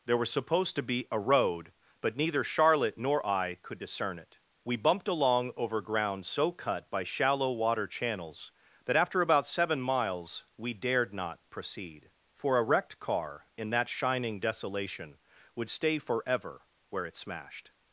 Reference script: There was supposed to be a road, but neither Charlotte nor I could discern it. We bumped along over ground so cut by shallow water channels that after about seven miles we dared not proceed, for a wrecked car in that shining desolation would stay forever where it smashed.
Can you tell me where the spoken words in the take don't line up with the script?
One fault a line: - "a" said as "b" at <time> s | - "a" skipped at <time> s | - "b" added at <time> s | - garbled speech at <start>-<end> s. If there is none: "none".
none